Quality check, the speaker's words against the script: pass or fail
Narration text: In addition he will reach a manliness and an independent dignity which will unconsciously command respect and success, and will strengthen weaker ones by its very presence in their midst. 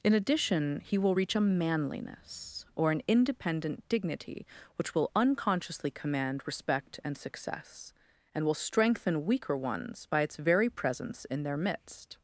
fail